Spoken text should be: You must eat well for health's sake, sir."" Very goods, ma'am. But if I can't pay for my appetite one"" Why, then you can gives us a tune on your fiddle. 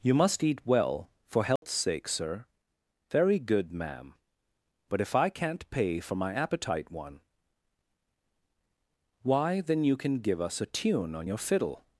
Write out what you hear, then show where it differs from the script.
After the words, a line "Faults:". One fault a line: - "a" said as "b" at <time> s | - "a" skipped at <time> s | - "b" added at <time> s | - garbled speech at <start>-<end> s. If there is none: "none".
You must eat well for health's sake, sir."" Very good, ma'am. But if I can't pay for my appetite one"" Why, then you can give us a tune on your fiddle.
Faults:
- "goods" said as "good" at 3.4 s
- "gives" said as "give" at 10.2 s